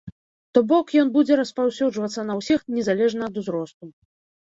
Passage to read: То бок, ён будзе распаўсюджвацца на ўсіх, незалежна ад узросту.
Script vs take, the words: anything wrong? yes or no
no